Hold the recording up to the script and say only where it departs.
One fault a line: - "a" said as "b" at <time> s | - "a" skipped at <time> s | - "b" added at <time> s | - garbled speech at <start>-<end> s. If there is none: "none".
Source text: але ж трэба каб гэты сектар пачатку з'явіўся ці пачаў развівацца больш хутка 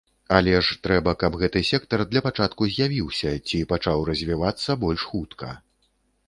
- "для" added at 2.1 s